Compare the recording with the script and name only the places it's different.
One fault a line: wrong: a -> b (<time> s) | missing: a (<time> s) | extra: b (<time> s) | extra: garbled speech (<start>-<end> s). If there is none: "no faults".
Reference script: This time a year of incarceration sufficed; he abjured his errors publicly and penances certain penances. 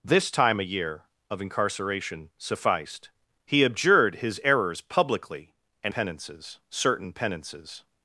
no faults